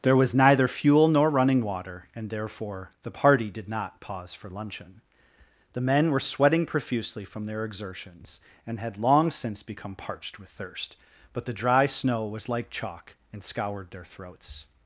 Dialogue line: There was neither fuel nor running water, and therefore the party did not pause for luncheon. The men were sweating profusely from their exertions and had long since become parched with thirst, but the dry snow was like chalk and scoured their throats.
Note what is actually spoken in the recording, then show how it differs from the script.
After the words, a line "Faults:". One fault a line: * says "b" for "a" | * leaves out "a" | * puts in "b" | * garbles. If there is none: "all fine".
There was neither fuel nor running water, and therefore the party did not pause for luncheon. The men were sweating profusely from their exertions and had long since become parched with thirst, but the dry snow was like chalk and scoured their throats.
Faults:
all fine